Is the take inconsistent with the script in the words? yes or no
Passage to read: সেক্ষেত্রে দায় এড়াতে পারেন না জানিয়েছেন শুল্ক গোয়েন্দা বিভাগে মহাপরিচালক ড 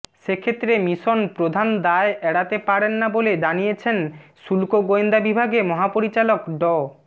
yes